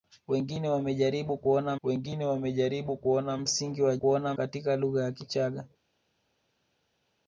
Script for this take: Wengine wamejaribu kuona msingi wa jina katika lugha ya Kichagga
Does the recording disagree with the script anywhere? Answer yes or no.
yes